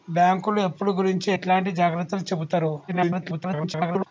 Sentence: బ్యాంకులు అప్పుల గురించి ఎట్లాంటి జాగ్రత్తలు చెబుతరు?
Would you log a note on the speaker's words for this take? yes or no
yes